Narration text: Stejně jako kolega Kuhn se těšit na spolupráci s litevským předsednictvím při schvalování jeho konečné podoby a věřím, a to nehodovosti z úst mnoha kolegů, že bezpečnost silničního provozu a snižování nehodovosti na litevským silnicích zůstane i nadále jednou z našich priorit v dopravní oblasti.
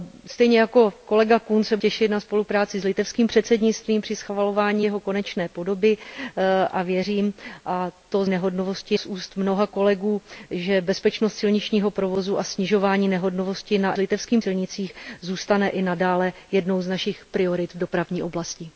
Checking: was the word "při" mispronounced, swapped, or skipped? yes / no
no